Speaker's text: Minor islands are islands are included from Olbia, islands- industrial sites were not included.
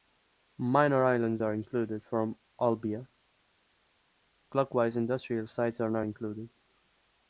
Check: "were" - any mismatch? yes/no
yes